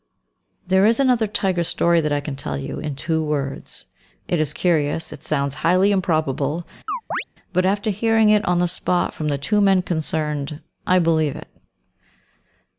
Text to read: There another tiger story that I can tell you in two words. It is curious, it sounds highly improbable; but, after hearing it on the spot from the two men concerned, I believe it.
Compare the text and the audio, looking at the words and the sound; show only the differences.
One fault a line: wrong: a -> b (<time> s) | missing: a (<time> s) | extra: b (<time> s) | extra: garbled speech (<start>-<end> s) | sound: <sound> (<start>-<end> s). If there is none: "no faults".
extra: is (0.9 s)
sound: chirp (6.9-7.2 s)